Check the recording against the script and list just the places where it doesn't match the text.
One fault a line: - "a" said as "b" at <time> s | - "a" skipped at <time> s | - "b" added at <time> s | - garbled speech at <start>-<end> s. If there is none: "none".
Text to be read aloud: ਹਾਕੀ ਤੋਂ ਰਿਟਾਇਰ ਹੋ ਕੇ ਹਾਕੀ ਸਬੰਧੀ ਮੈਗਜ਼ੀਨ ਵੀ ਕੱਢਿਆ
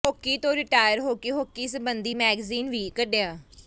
none